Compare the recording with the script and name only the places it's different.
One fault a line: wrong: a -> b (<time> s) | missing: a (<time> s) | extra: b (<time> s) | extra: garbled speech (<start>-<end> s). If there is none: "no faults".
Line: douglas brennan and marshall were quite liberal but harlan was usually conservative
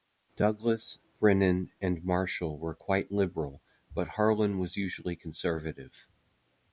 no faults